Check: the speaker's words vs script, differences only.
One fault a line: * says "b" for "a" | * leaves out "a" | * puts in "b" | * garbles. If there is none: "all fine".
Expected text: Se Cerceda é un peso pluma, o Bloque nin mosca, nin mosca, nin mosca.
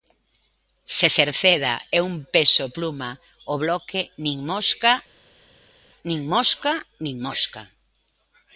all fine